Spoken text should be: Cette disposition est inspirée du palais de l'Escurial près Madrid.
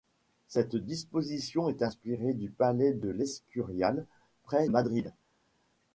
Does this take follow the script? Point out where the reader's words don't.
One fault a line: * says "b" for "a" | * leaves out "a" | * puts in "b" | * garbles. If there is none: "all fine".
all fine